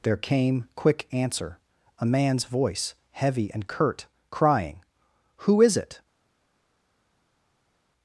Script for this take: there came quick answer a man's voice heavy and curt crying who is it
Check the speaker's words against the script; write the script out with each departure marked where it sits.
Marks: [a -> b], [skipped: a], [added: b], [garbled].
there came quick answer a man's voice heavy and curt crying who is it